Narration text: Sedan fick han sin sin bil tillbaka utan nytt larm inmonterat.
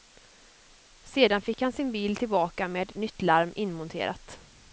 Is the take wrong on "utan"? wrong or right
wrong